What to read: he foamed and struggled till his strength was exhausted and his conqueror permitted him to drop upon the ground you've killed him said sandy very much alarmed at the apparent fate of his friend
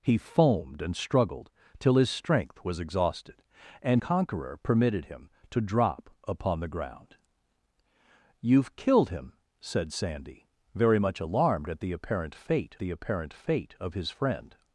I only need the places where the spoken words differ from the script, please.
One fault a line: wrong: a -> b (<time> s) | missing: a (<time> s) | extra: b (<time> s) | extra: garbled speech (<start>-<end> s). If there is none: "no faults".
missing: his (4.0 s)
extra: the apparent fate (12.8 s)